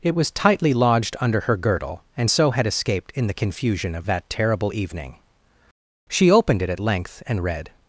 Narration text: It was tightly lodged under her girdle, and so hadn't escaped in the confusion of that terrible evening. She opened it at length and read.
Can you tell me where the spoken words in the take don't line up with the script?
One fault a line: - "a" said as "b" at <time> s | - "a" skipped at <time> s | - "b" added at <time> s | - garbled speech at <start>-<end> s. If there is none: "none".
- "hadn't" said as "had" at 2.5 s